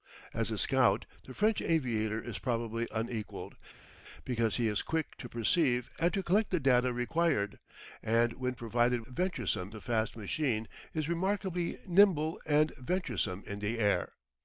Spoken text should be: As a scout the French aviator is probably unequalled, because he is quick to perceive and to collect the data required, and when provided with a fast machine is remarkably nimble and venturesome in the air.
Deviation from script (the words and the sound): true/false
true